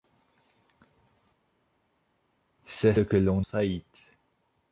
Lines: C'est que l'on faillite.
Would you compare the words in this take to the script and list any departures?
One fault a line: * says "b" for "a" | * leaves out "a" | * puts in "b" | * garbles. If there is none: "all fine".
all fine